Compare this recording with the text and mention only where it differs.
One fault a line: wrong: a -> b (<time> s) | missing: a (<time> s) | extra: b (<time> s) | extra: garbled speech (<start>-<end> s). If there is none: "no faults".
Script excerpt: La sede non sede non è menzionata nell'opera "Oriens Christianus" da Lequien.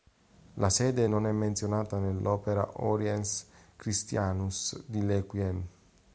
missing: sede non (1.3 s)
wrong: da -> di (4.9 s)